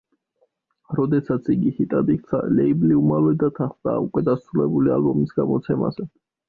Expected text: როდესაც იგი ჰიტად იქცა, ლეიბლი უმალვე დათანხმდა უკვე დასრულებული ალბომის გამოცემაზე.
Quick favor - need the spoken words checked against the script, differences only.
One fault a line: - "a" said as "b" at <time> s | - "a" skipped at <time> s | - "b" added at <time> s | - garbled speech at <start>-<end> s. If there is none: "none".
none